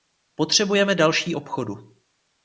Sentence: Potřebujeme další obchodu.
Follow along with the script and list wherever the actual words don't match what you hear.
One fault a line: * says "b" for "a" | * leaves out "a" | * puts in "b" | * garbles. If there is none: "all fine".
all fine